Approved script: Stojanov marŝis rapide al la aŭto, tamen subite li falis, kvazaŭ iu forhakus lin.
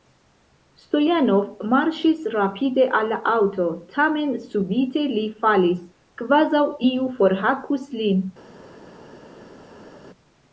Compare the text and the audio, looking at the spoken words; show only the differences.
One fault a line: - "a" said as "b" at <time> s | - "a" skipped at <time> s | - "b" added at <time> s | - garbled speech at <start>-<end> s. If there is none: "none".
none